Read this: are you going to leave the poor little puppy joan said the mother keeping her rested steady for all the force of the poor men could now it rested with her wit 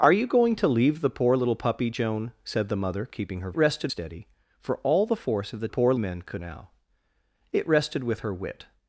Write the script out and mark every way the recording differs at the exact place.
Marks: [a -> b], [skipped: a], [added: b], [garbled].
are you going to leave the poor little puppy joan said the mother keeping her rested steady for all the force of the poor men could now it rested with her wit